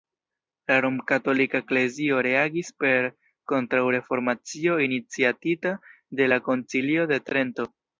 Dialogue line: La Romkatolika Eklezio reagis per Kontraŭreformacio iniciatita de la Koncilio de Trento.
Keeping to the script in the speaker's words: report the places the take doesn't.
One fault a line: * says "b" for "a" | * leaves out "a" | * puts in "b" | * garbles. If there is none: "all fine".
all fine